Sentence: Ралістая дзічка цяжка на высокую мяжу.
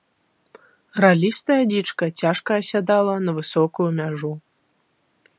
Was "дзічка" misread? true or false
false